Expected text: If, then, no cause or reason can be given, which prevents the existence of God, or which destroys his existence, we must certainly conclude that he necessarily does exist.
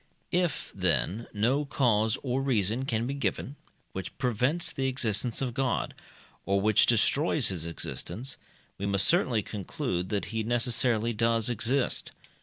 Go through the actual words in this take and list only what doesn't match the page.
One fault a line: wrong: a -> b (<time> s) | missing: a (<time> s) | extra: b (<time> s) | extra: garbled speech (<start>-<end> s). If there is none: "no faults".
no faults